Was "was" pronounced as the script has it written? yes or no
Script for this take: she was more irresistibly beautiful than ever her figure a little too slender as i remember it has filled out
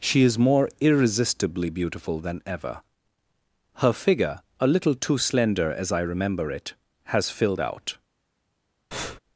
no